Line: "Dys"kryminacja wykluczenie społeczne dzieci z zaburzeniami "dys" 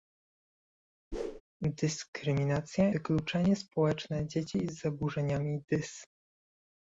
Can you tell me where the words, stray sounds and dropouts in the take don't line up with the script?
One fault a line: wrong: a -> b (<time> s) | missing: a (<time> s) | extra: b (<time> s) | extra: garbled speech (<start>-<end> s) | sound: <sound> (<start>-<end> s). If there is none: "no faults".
sound: whoosh (1.1-1.4 s)